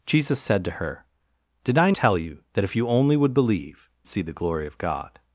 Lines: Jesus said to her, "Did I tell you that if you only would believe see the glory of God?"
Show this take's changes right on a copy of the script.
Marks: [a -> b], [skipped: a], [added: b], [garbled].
Jesus said to her, "Did I tell you that if you only would believe see the glory of God?"